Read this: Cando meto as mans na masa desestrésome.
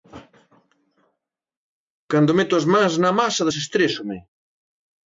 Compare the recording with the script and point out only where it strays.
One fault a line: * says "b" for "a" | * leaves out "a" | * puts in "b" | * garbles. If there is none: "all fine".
all fine